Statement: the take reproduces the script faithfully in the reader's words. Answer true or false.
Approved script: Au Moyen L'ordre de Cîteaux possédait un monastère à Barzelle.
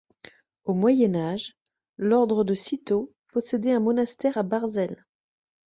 false